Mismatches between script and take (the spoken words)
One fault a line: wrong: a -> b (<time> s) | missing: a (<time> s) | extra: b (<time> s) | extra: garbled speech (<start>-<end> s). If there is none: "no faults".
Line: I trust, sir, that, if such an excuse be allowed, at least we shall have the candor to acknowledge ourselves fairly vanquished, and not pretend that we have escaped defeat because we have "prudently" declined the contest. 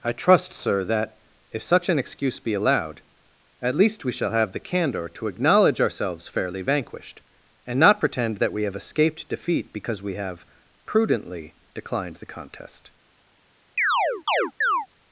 no faults